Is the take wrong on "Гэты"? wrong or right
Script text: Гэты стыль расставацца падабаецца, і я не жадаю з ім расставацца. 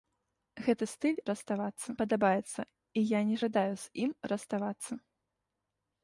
right